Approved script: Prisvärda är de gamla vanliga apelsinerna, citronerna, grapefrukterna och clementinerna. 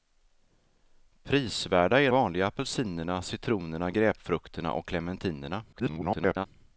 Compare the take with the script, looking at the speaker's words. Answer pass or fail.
fail